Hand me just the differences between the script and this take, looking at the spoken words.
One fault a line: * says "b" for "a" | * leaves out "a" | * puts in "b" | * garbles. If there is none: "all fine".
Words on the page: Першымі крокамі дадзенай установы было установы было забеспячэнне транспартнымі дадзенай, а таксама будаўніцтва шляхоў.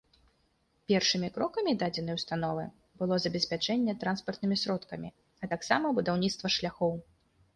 * leaves out "установы было"
* says "сродкамі" for "дадзенай"